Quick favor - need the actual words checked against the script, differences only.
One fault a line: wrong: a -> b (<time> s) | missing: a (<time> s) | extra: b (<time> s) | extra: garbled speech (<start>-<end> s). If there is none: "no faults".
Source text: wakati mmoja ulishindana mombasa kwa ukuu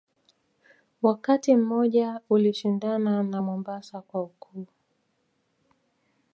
extra: na (3.2 s)